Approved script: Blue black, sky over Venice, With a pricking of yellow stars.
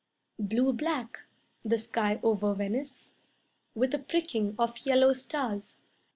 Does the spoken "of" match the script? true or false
true